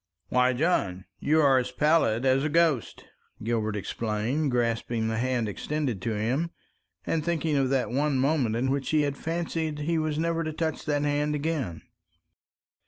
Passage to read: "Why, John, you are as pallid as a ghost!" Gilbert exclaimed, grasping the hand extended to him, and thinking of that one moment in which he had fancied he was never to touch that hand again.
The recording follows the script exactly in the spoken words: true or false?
true